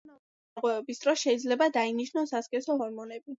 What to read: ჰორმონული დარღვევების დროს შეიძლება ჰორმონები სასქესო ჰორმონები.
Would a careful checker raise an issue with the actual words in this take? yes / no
yes